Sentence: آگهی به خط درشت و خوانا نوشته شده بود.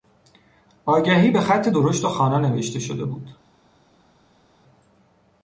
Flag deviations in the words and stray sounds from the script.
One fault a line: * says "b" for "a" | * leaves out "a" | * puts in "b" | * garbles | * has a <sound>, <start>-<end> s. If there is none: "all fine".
all fine